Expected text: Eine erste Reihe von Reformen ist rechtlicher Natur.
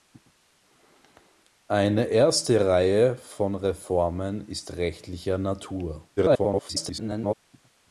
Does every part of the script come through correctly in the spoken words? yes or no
no